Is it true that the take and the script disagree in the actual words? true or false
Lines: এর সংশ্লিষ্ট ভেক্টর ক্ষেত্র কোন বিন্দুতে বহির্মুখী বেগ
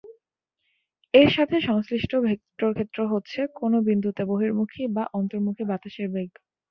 true